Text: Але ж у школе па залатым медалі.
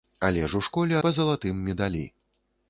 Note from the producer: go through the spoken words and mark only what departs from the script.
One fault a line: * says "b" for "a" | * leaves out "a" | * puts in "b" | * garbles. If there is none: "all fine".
all fine